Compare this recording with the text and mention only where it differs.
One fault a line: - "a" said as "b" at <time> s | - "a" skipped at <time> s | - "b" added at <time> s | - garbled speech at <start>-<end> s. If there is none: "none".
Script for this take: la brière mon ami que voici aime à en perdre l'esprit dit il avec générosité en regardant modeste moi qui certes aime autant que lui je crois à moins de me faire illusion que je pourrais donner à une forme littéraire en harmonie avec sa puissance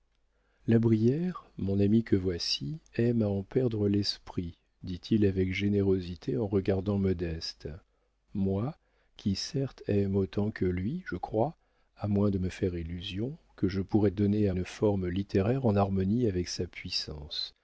none